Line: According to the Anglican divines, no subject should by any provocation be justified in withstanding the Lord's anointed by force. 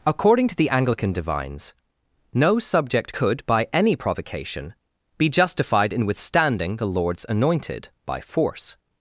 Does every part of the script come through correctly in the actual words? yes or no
no